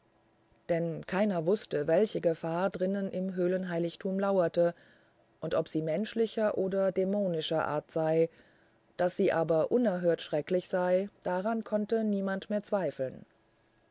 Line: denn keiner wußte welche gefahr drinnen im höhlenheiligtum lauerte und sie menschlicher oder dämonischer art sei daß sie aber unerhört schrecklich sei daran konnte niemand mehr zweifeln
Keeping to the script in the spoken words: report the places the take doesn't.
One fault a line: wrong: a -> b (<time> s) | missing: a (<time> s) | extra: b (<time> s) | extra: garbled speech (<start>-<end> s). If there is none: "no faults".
extra: ob (5.5 s)